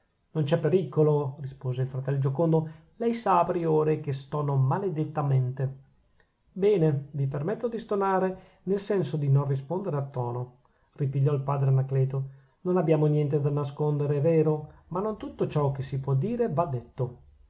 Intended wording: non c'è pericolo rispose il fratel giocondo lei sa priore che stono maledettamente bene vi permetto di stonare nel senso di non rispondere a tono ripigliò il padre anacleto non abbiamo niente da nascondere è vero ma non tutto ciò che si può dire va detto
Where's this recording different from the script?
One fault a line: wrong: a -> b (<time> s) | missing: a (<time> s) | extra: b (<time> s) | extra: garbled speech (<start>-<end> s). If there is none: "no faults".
no faults